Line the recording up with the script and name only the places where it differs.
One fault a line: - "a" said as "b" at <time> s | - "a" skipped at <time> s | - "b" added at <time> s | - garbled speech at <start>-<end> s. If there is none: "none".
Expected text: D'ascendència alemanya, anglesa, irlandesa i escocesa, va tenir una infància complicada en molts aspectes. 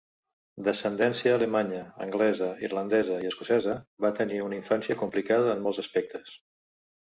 none